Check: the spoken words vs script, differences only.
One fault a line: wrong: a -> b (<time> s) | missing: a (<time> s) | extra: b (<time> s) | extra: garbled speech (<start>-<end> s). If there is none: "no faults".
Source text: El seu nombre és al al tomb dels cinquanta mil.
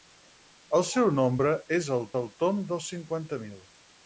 no faults